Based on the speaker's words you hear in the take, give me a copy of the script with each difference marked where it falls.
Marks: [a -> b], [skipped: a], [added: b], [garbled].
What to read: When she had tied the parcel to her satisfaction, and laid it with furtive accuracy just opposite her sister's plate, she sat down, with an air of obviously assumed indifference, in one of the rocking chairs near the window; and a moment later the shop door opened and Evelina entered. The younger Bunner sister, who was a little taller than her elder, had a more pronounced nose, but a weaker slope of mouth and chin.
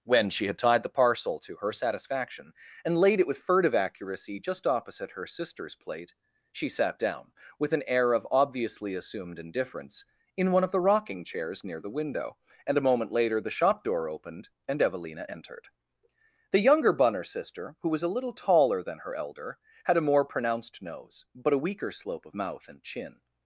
When she had tied the parcel to her satisfaction, and laid it with furtive accuracy just opposite her sister's plate, she sat down, with an air of obviously assumed indifference, in one of the rocking chairs near the window; and a moment later the shop door opened and Evelina entered. The younger Bunner sister, who was a little taller than her elder, had a more pronounced nose, but a weaker slope of mouth and chin.